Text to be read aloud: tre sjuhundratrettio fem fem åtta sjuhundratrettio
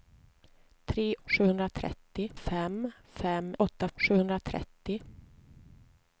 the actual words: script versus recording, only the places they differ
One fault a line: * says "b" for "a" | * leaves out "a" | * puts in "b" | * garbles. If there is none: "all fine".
all fine